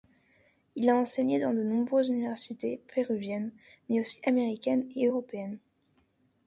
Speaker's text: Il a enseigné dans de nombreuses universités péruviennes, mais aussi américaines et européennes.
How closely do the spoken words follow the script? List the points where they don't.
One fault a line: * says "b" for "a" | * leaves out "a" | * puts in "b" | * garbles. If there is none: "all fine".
all fine